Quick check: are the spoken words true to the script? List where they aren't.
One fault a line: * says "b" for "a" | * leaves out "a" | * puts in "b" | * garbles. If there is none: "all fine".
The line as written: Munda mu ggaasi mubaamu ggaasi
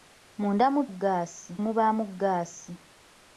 all fine